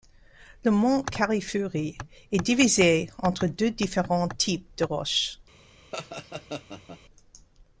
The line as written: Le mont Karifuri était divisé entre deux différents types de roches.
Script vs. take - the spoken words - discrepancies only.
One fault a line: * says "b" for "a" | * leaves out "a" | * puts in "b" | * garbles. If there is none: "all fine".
* says "est" for "était"